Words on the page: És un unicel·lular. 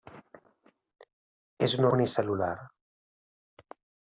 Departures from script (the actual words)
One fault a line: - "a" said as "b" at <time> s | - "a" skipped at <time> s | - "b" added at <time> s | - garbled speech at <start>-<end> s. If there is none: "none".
none